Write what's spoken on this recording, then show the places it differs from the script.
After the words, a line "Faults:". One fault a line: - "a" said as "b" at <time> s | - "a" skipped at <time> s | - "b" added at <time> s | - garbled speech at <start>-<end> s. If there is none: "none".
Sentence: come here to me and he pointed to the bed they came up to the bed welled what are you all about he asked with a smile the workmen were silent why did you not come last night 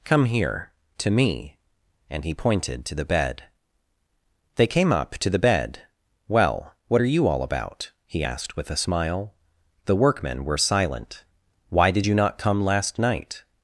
come here to me and he pointed to the bed they came up to the bed well what are you all about he asked with a smile the workmen were silent why did you not come last night
Faults:
- "welled" said as "well" at 6.3 s